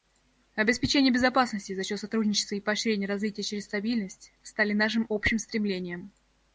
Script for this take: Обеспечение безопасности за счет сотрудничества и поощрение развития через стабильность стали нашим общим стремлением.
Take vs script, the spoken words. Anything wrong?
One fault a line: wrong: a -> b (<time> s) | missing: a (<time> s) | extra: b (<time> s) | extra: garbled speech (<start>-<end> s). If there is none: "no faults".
no faults